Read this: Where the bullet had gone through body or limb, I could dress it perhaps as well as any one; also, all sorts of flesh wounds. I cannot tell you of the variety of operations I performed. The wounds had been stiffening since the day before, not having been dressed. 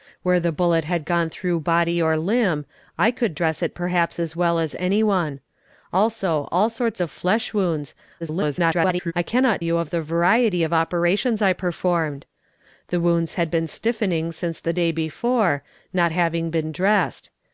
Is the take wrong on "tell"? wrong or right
wrong